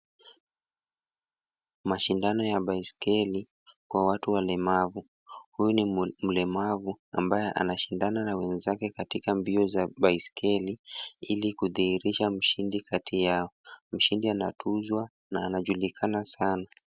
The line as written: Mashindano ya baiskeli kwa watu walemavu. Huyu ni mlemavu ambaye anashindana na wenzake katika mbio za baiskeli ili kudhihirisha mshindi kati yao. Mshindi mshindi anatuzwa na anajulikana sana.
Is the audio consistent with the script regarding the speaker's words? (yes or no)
no